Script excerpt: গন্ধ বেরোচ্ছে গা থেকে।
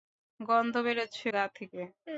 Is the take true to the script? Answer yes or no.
yes